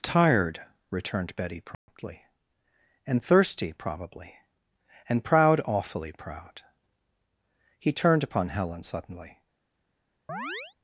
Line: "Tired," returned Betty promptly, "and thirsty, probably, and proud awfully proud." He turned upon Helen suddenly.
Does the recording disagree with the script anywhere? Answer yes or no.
no